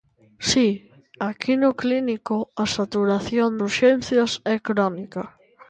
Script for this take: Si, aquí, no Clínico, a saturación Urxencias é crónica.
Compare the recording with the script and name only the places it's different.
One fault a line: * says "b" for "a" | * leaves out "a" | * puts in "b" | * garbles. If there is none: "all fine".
all fine